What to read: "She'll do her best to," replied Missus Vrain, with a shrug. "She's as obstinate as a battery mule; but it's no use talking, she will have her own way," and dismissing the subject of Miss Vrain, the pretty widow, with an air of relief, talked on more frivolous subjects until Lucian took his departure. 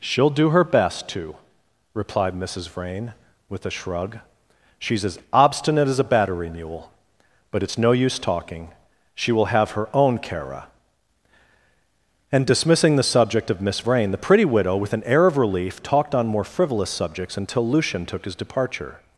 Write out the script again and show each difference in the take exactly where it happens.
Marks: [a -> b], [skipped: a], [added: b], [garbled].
"She'll do her best to," replied Missus Vrain, with a shrug. "She's as obstinate as a battery mule; but it's no use talking, she will have her own [way," -> kara] and dismissing the subject of Miss Vrain, the pretty widow, with an air of relief, talked on more frivolous subjects until Lucian took his departure.